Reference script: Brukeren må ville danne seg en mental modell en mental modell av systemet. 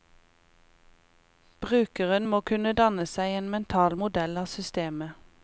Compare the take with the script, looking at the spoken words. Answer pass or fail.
fail